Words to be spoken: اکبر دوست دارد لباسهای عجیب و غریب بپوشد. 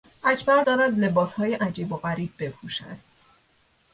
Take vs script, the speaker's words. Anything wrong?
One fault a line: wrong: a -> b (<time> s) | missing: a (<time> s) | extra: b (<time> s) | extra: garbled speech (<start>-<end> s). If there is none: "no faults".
missing: دوست (0.6 s)